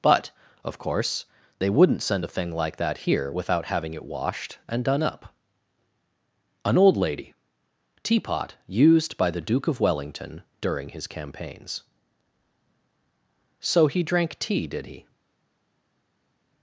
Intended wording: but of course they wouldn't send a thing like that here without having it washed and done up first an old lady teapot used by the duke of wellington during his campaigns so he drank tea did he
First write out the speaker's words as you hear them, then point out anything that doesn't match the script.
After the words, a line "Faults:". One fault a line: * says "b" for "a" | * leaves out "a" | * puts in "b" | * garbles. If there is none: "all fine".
but of course they wouldn't send a thing like that here without having it washed and done up an old lady teapot used by the duke of wellington during his campaigns so he drank tea did he
Faults:
* leaves out "first"